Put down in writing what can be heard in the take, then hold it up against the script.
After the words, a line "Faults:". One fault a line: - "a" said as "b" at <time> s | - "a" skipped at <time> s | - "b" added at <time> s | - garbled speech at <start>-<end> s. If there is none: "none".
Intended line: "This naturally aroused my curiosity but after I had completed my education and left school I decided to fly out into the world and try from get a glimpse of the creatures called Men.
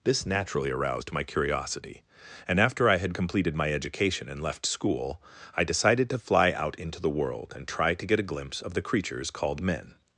"This naturally aroused my curiosity and after I had completed my education and left school I decided to fly out into the world and try to get a glimpse of the creatures called Men.
Faults:
- "but" said as "and" at 2.5 s
- "from" said as "to" at 8.0 s